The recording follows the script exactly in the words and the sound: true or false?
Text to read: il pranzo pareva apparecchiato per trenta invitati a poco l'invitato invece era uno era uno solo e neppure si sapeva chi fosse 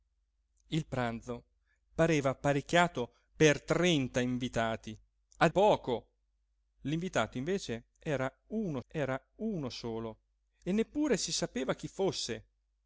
true